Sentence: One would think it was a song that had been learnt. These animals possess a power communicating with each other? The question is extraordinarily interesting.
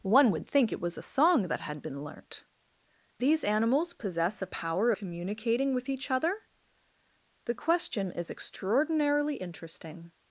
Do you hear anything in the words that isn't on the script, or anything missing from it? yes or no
no